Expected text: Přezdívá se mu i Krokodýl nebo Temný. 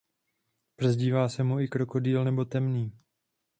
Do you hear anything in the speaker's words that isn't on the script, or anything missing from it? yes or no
no